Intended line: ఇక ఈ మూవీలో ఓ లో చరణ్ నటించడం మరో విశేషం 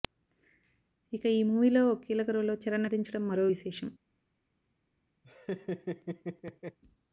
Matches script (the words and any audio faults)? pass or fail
fail